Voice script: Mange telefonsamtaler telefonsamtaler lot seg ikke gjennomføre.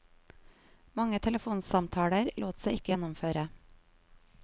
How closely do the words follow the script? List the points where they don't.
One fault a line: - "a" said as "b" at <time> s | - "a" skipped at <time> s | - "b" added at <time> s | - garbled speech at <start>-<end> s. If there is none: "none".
- "telefonsamtaler" skipped at 2.3 s